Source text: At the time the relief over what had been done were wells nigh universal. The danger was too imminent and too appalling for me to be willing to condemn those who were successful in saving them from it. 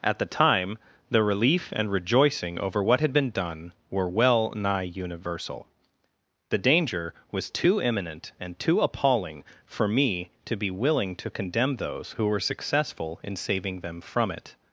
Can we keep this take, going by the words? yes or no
no